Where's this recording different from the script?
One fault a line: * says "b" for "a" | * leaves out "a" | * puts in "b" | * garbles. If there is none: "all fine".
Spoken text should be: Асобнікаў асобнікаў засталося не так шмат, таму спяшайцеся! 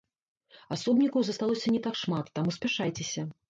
* leaves out "асобнікаў"